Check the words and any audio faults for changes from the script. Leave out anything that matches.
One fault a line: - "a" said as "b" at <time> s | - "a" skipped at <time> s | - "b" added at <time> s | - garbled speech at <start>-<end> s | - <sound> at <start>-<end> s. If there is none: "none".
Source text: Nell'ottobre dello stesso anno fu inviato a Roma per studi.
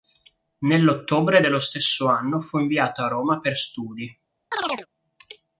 - chirp at 4.5-4.9 s